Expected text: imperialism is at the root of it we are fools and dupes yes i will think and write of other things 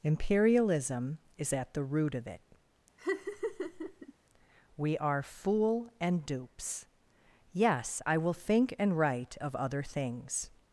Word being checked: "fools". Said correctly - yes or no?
no